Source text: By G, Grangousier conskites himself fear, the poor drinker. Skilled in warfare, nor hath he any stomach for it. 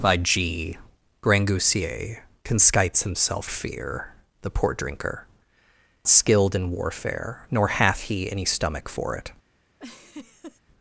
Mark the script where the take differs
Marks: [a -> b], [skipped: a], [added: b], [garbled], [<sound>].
By G, Grangousier conskites himself fear, the poor drinker. Skilled in warfare, nor hath he any stomach for it. [laugh]